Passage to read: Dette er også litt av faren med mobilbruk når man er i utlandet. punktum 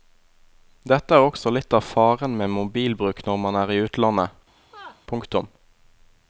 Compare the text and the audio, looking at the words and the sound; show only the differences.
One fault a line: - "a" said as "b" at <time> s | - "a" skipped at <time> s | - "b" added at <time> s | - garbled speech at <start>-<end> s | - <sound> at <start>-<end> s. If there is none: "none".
- laugh at 4.6-5.0 s